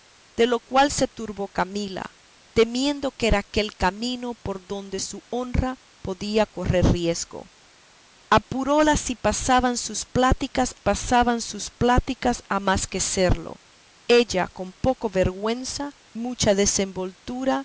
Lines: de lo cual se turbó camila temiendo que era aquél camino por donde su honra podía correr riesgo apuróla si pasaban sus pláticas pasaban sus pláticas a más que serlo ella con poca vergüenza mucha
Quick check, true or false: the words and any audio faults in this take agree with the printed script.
true